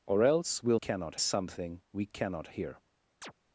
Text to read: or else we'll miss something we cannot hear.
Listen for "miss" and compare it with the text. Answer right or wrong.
wrong